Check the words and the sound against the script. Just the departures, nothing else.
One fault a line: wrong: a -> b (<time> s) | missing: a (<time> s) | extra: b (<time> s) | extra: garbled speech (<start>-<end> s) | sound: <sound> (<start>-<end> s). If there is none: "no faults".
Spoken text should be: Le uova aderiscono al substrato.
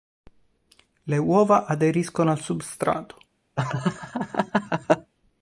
sound: laugh (3.6-5.1 s)